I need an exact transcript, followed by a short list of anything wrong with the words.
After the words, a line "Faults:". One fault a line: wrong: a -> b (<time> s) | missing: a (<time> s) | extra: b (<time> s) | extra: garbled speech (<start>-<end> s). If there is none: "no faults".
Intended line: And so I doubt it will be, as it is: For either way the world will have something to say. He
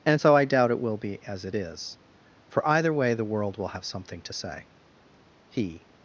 And so I doubt it will be, as it is: For either way the world will have something to say. He
Faults:
no faults